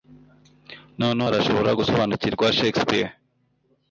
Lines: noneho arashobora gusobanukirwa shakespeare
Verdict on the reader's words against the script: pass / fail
pass